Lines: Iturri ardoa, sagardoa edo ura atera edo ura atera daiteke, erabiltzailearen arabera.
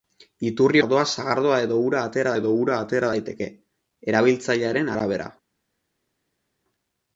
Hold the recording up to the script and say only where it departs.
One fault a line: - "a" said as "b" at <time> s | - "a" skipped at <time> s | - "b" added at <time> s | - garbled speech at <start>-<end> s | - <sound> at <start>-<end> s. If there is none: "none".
none